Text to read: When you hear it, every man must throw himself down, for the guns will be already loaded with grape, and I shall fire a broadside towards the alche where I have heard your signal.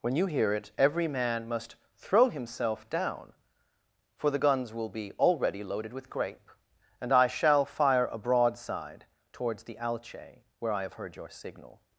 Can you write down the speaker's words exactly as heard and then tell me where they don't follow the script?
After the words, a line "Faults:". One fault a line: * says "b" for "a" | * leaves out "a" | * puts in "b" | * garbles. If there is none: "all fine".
When you hear it, every man must throw himself down, for the guns will be already loaded with grape, and I shall fire a broadside towards the alche where I have heard your signal.
Faults:
all fine